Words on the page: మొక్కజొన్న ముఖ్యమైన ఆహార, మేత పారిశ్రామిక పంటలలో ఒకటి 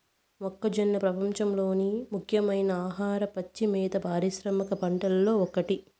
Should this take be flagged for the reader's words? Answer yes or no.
yes